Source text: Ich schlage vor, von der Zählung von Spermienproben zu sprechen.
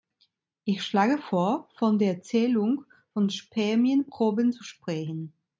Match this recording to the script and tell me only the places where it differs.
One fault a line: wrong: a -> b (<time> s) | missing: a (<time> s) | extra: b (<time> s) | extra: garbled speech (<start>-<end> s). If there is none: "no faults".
no faults